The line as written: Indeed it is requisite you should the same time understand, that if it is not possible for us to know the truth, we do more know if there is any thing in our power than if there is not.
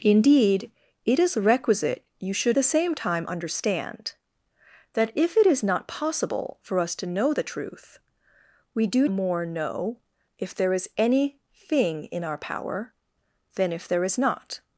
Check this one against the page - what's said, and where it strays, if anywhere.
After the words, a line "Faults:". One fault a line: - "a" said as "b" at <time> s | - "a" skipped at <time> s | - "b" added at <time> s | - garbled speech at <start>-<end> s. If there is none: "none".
Indeed it is requisite you should the same time understand, that if it is not possible for us to know the truth, we do more know if there is any thing in our power than if there is not.
Faults:
none